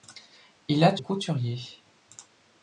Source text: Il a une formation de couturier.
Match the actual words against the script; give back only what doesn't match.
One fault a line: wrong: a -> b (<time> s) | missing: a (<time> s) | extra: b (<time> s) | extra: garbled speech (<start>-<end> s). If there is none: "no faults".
missing: une formation de (1.0 s)